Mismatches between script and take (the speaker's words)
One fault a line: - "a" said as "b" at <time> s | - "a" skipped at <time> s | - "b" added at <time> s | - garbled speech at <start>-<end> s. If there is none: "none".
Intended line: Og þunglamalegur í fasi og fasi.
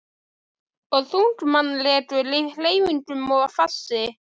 - "fasi" said as "hreyfingum" at 2.6 s